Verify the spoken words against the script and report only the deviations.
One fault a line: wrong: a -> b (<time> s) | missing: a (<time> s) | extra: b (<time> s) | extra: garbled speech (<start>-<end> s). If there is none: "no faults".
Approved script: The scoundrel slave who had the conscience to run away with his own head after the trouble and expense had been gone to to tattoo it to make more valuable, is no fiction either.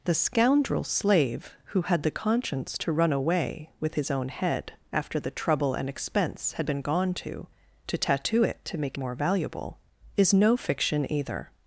no faults